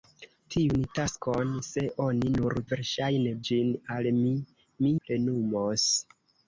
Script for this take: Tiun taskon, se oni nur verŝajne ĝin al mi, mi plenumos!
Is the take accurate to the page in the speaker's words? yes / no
yes